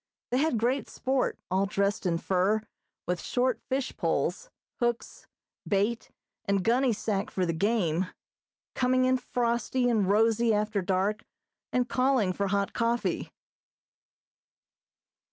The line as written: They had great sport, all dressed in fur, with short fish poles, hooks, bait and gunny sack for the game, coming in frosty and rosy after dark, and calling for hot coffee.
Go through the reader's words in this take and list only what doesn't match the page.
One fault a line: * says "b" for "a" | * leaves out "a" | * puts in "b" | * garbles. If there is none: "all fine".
all fine